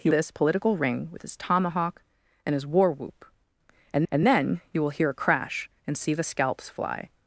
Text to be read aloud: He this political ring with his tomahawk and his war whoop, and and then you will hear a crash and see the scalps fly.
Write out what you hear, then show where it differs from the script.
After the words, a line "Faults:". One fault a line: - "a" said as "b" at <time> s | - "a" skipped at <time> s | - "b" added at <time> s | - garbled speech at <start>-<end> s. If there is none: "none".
He this political ring with his tomahawk and his war whoop, and and then you will hear a crash and see the scalps fly.
Faults:
none